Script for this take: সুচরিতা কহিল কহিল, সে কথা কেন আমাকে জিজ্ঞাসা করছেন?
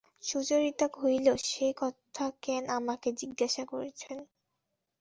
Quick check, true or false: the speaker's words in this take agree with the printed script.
false